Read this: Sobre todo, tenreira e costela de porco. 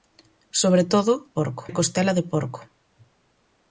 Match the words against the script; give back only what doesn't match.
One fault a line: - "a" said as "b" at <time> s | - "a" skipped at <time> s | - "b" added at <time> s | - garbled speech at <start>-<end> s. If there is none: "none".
- "tenreira" said as "porco" at 1.4 s